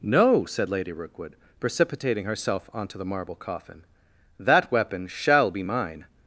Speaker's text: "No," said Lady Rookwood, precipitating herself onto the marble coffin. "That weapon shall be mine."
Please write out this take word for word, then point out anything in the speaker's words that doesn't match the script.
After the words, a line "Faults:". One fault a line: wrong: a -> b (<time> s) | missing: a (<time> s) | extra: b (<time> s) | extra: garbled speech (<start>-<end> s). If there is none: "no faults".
"No," said Lady Rookwood, precipitating herself onto the marble coffin. "That weapon shall be mine."
Faults:
no faults